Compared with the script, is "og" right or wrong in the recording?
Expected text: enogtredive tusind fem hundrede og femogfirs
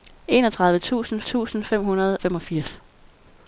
wrong